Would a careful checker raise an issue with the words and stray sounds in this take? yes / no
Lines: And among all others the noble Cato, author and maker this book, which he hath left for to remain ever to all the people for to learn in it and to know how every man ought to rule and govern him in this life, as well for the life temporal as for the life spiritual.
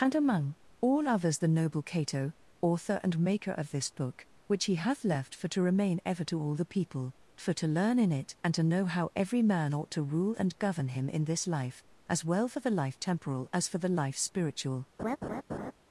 yes